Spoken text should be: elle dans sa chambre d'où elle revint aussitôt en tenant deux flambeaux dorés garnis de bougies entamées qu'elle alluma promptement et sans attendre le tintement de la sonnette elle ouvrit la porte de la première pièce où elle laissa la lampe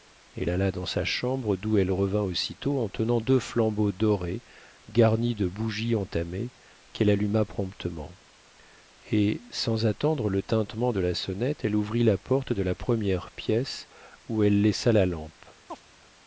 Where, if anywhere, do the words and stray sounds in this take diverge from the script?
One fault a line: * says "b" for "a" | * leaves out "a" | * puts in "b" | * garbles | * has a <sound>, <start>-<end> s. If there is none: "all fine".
* puts in "alla"
* has a chirp, 15.7-15.8 s